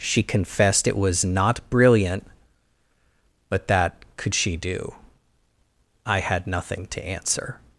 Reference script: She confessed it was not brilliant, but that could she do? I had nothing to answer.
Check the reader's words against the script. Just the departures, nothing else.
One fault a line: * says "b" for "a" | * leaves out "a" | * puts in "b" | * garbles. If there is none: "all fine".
all fine